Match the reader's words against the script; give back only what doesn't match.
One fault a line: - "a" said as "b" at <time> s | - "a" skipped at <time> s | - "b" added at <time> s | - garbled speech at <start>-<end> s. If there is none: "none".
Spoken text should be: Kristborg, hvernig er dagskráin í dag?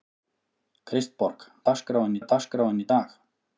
- "hvernig" said as "dagskráin" at 1.7 s